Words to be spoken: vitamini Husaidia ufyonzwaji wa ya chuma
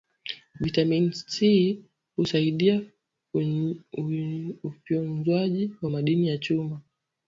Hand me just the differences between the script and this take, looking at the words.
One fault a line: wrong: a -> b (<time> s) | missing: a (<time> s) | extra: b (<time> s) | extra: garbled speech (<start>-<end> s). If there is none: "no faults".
extra: C (1.1 s)
extra: madini (5.9 s)